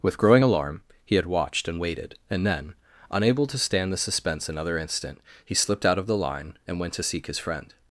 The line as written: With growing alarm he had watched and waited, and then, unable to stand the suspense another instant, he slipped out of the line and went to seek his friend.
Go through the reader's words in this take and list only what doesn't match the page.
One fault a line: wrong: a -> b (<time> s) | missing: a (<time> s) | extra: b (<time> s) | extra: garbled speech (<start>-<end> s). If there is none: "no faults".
no faults